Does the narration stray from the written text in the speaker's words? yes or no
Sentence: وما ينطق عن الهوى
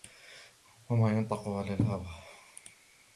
no